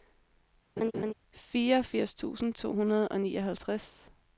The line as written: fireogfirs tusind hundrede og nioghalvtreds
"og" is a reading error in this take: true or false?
false